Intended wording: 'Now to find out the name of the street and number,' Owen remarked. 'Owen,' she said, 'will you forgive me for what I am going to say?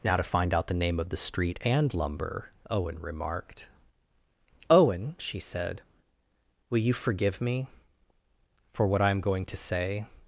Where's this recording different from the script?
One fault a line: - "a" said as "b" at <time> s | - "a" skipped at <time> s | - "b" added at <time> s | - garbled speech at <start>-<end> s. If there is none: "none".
- "number" said as "lumber" at 1.9 s